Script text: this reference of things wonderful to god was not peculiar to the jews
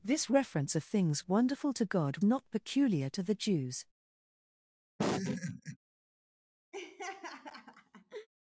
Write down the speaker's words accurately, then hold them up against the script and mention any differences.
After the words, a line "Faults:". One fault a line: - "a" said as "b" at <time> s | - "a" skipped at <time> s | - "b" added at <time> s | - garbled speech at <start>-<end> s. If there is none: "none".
this reference of things wonderful to god not peculiar to the jews
Faults:
- "was" skipped at 2.2 s